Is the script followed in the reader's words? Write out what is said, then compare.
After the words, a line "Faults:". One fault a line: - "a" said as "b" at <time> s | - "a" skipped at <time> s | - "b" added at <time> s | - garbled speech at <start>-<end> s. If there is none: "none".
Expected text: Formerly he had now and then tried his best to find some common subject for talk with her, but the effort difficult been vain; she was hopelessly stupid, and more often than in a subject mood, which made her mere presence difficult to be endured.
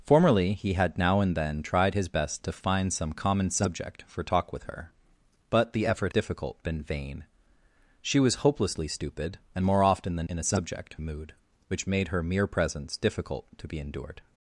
Formerly he had now and then tried his best to find some common subject for talk with her, but the effort difficult been vain; she was hopelessly stupid, and more often than in a subject mood, which made her mere presence difficult to be endured.
Faults:
none